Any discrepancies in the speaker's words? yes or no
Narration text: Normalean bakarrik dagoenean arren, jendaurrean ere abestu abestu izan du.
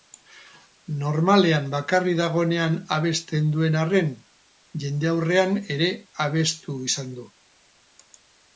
yes